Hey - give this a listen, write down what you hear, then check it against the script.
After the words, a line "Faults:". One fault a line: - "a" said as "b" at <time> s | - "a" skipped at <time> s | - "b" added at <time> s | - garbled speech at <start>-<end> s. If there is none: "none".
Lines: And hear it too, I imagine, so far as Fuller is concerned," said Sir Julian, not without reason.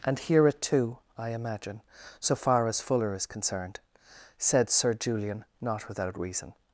And hear it too, I imagine, so far as Fuller is concerned," said Sir Julian, not without reason.
Faults:
none